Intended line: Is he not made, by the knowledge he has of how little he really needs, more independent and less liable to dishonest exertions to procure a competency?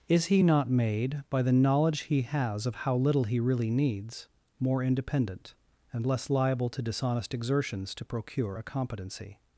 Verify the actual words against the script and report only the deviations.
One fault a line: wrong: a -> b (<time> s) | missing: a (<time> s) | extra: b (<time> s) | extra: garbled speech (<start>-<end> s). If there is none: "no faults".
no faults